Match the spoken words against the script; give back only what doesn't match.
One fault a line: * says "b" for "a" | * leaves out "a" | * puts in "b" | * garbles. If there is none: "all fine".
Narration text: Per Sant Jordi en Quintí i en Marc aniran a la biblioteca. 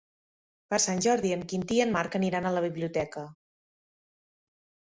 all fine